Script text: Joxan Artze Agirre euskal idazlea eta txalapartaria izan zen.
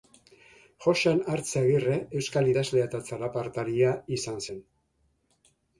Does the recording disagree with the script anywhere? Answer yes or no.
no